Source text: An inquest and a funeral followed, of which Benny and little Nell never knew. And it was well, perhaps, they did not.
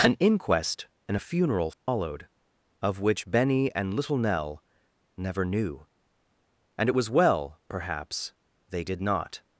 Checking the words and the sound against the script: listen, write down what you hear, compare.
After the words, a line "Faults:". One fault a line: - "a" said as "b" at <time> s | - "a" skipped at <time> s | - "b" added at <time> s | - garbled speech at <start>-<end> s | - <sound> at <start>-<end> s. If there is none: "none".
An inquest and a funeral followed, of which Benny and little Nell never knew. And it was well, perhaps, they did not.
Faults:
- dropout at 1.7-1.9 s